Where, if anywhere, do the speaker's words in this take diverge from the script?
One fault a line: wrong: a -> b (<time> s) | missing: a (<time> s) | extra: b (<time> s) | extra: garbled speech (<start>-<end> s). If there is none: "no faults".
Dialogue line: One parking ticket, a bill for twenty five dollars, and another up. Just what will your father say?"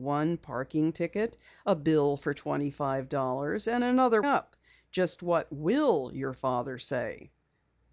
no faults